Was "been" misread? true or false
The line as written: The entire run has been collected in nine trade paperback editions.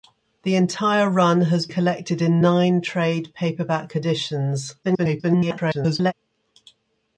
true